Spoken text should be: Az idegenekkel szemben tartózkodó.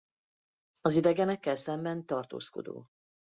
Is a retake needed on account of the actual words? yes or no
no